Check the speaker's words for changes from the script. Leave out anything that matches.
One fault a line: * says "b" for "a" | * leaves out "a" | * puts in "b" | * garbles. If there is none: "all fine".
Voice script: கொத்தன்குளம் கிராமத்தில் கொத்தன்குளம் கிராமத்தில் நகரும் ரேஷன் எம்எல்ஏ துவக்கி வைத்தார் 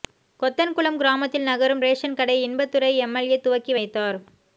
* says "நகரும் ரேஷன் கடை இன்பதுரை" for "கொத்தன்குளம் கிராமத்தில் நகரும் ரேஷன்"